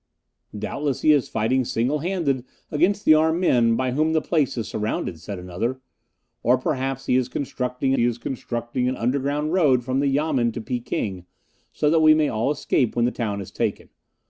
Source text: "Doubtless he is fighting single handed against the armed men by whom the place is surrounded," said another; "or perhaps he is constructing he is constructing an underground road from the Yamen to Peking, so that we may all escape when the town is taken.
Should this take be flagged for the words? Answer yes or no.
no